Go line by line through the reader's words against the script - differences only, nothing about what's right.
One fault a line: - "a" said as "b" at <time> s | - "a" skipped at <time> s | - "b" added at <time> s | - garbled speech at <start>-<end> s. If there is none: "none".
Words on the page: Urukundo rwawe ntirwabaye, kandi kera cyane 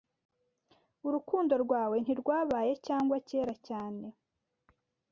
- "kandi" said as "cyangwa" at 2.9 s